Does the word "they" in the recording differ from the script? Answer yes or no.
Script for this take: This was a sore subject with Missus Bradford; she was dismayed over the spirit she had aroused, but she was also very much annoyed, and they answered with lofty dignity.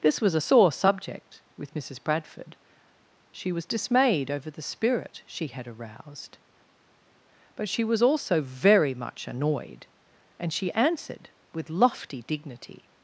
yes